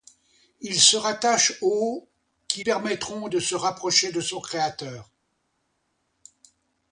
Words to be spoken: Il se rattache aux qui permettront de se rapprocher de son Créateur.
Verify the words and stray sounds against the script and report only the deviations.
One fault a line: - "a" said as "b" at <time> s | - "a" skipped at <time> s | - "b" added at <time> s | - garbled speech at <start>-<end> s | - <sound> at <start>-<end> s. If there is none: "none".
none